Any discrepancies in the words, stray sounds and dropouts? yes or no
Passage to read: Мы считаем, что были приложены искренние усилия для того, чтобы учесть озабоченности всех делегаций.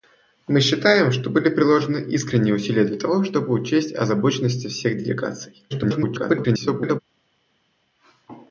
yes